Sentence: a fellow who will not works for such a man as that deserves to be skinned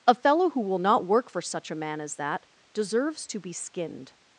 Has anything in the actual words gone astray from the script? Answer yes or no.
yes